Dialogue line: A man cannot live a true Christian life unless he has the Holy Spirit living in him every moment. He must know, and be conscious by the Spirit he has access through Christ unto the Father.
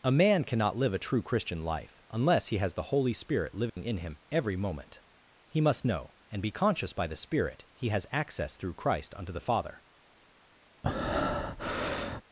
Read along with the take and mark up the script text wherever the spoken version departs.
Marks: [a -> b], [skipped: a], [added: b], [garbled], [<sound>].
A man cannot live a true Christian life unless he has the Holy Spirit living [dropout] in him every moment. He must know, and be conscious by the Spirit he has access through Christ unto the Father. [breath]